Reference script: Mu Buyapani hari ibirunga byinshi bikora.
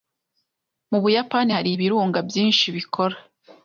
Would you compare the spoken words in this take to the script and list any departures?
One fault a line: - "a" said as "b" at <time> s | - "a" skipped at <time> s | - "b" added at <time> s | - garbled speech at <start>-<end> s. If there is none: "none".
none